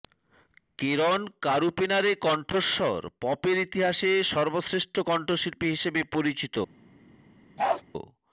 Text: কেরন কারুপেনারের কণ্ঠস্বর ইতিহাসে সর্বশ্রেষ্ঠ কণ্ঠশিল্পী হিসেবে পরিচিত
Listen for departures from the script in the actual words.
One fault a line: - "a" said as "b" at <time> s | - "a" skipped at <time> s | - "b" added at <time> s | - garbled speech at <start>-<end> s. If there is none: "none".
- "পপের" added at 3.2 s